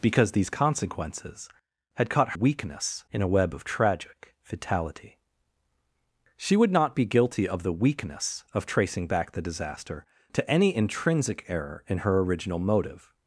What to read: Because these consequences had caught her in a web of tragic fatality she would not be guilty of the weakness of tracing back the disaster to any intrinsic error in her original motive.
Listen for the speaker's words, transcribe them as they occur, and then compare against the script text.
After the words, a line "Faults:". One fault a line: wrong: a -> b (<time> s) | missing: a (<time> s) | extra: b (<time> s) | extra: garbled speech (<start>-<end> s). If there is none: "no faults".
Because these consequences had caught weakness in a web of tragic fatality she would not be guilty of the weakness of tracing back the disaster to any intrinsic error in her original motive.
Faults:
wrong: her -> weakness (2.3 s)